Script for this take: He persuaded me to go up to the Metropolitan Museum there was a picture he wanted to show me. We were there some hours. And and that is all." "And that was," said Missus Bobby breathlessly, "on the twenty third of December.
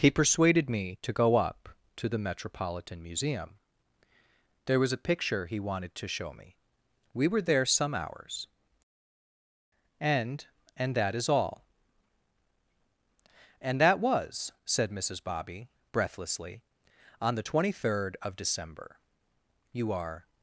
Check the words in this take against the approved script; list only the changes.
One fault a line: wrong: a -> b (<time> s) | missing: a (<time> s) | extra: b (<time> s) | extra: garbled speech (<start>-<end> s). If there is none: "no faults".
extra: You are (19.7 s)